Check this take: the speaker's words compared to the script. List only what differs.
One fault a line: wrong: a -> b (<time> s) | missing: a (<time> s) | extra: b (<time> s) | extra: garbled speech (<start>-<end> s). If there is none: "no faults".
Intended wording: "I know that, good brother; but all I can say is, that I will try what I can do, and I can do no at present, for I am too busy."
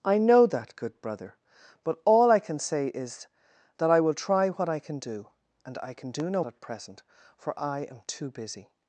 no faults